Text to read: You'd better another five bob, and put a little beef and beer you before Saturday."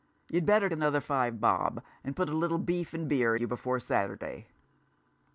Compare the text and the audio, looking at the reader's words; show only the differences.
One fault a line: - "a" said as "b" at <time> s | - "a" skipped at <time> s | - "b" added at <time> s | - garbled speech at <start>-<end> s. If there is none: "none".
none